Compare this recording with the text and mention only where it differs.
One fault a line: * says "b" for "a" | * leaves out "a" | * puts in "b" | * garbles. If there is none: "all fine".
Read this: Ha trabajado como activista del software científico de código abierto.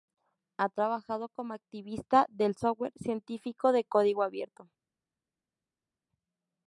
all fine